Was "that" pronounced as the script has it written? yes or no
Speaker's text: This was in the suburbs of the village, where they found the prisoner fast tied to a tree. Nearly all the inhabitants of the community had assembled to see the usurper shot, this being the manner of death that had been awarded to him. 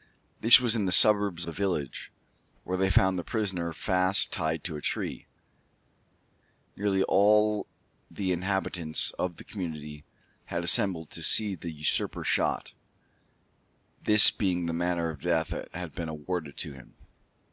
yes